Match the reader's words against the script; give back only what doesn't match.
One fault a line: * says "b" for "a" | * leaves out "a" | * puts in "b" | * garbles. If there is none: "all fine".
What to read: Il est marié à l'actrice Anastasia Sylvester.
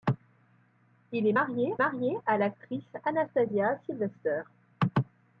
* puts in "marié"